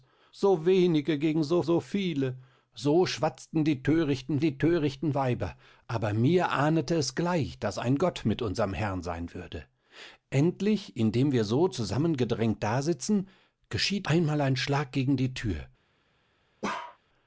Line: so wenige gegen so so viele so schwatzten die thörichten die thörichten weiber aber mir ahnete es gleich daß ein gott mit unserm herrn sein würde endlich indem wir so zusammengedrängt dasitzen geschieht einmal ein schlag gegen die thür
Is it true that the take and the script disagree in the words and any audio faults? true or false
true